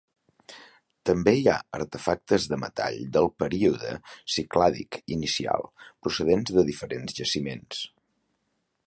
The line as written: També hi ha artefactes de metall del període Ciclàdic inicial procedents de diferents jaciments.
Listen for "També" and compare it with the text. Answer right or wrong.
right